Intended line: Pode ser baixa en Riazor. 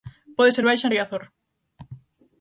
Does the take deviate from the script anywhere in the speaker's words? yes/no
no